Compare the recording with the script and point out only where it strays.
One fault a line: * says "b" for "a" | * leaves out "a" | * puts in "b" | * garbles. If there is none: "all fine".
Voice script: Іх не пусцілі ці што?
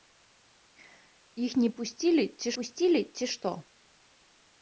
* puts in "пусцілі ці"